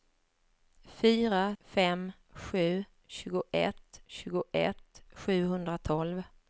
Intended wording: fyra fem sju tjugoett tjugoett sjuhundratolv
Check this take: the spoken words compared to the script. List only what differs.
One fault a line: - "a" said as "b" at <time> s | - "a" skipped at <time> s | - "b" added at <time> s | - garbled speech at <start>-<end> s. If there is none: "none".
none